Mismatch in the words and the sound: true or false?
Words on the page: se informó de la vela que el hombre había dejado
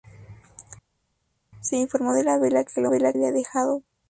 true